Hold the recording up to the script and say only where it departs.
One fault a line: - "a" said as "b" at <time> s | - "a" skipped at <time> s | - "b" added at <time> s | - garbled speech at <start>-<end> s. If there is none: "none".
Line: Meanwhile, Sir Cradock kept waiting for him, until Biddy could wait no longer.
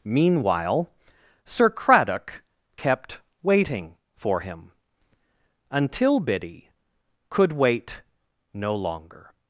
none